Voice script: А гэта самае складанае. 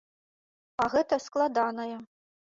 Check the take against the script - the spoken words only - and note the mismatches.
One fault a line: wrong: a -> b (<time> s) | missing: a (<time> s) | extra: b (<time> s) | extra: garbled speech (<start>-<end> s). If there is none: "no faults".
missing: самае (1.2 s)